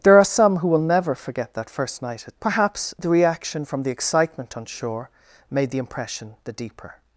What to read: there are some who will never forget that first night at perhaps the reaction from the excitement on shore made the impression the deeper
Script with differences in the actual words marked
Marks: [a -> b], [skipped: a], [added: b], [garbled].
there are some who will never forget that first night at perhaps the reaction from the excitement on shore made the impression the deeper